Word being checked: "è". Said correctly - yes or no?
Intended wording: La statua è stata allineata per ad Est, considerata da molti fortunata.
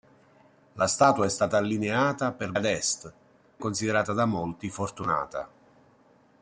yes